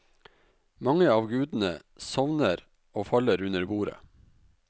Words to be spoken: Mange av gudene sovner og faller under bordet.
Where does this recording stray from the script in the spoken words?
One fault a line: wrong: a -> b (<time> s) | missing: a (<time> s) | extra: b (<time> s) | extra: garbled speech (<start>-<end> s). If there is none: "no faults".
no faults